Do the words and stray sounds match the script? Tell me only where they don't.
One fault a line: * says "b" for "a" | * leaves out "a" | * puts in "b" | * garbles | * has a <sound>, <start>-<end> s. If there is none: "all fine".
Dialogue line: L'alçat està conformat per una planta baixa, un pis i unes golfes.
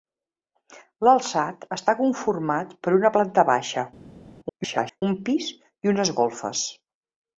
* garbles